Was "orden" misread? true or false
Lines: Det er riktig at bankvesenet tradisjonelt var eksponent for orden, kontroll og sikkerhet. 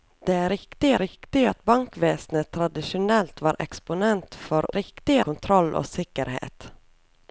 true